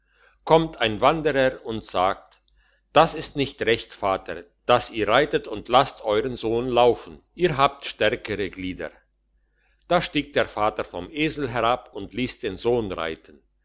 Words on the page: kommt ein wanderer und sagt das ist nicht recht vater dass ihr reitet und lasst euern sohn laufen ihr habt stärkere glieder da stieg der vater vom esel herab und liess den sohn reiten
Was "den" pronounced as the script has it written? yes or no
yes